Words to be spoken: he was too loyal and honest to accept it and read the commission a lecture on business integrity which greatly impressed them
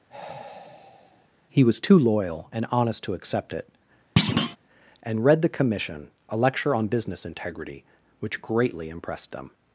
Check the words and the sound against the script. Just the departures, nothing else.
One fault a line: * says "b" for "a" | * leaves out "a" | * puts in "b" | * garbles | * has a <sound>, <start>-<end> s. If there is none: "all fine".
* has a sigh, 0.1-1.3 s
* has a thud, 4.2-4.6 s